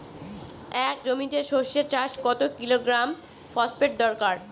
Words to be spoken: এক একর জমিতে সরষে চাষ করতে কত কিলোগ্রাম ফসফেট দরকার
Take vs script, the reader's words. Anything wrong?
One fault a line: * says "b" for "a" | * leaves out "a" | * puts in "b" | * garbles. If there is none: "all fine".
* leaves out "একর"
* leaves out "করতে"